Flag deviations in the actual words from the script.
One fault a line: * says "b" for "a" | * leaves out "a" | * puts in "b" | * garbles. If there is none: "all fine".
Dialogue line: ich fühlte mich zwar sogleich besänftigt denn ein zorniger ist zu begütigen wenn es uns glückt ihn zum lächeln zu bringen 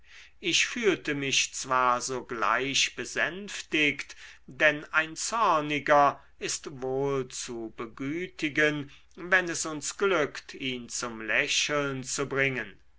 * puts in "wohl"